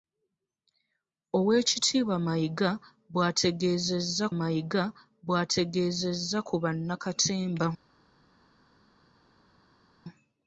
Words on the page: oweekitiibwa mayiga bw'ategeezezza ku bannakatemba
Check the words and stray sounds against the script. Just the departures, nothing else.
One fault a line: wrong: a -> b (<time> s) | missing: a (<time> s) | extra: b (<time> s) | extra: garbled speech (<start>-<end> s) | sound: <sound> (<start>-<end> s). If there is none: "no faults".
extra: mayiga bw'ategeezezza (4.4 s)